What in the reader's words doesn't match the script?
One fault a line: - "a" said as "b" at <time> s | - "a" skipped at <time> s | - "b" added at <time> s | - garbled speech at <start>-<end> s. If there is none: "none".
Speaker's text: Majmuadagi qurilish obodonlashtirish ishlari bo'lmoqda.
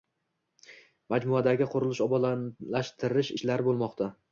none